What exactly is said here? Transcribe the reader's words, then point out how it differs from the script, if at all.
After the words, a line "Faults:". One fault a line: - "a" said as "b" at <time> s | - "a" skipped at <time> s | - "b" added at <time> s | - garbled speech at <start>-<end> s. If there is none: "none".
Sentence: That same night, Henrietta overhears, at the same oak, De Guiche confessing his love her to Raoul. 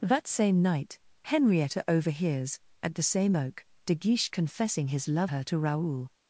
That same night, Henrietta overhears, at the same oak, De Guiche confessing his love her to Raoul.
Faults:
none